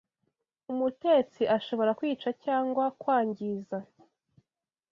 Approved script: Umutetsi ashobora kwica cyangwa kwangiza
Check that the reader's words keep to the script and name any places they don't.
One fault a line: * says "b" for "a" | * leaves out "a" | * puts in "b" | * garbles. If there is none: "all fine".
all fine